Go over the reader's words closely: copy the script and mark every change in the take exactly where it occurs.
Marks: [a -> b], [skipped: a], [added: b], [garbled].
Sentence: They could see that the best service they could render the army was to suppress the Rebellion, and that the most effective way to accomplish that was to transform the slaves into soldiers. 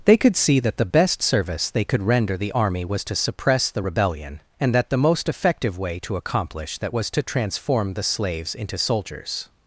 They could see that the best service they could render the army was to suppress the Rebellion, and that the most effective way to accomplish that was to transform the slaves into soldiers.